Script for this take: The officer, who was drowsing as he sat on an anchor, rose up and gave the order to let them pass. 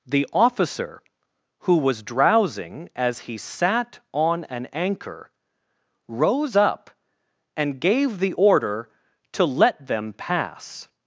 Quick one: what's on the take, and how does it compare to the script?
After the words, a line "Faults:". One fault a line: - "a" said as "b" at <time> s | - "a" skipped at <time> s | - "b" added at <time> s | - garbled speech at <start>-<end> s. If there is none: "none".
The officer, who was drowsing as he sat on an anchor, rose up and gave the order to let them pass.
Faults:
none